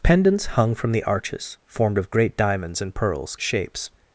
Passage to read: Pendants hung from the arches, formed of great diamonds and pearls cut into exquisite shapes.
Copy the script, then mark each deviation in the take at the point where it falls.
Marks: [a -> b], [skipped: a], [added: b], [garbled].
Pendants hung from the arches, formed of great diamonds and pearls [skipped: cut into exquisite] shapes.